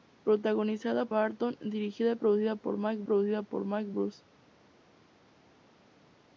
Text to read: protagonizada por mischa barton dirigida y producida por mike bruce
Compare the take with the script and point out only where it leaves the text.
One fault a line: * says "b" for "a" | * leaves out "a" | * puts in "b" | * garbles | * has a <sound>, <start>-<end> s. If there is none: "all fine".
* leaves out "por mischa"
* puts in "producida por mike"